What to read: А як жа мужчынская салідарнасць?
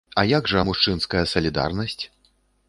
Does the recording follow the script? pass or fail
pass